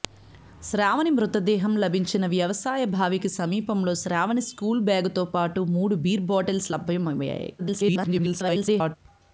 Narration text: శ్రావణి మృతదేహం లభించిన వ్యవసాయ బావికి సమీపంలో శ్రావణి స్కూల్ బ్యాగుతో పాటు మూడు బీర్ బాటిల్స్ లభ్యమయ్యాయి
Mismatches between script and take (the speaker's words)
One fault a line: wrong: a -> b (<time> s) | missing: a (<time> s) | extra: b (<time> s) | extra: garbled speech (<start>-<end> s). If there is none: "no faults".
extra: garbled speech (7.6-9.0 s)